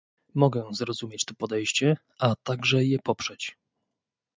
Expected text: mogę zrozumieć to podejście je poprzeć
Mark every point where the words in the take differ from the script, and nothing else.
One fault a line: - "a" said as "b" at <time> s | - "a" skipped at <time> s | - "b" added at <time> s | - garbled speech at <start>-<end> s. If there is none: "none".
- "a także" added at 2.2 s